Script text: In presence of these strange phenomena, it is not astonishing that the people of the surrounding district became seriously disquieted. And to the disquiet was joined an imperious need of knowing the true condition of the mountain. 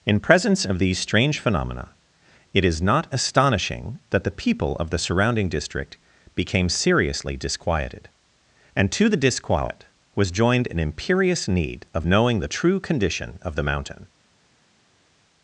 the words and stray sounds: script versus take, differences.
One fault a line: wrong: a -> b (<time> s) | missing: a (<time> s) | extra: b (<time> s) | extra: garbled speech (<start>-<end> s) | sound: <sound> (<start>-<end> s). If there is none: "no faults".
no faults